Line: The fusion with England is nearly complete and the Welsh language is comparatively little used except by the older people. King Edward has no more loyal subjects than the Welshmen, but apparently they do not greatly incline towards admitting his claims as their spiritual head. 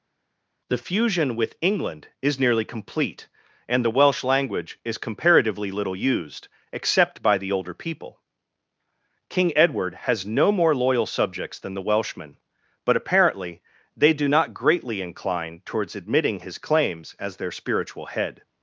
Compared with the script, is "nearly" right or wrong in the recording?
right